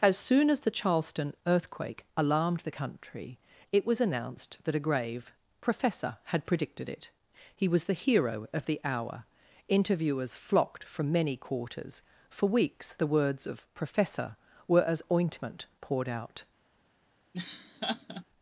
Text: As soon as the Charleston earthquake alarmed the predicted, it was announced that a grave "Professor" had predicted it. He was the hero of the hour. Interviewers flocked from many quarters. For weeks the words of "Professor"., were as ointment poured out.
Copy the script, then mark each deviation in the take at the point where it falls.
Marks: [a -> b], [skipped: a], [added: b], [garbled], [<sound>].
As soon as the Charleston earthquake alarmed the [predicted, -> country] it was announced that a grave "Professor" had predicted it. He was the hero of the hour. Interviewers flocked from many quarters. For weeks the words of "Professor"., were as ointment poured out. [laugh]